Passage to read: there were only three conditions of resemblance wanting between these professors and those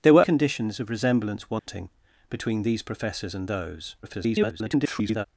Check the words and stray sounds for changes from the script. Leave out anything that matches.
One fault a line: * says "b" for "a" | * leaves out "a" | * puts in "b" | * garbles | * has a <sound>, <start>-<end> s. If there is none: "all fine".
* leaves out "only three"
* has a dropout, 1.6-1.7 s
* garbles